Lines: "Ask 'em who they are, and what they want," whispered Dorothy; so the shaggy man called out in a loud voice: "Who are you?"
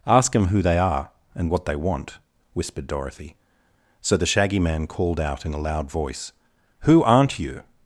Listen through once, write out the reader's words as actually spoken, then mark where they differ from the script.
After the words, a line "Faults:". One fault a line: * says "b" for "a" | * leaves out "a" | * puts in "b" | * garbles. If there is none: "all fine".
"Ask 'em who they are, and what they want," whispered Dorothy; so the shaggy man called out in a loud voice: "Who aren't you?"
Faults:
* says "aren't" for "are"